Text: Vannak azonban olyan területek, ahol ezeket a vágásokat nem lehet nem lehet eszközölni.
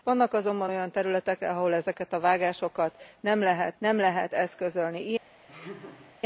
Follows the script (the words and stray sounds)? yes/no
no